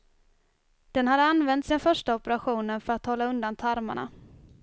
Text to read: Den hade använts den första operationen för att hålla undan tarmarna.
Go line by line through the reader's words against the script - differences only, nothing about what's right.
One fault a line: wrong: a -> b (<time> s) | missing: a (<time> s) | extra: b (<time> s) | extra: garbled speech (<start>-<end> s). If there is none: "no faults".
no faults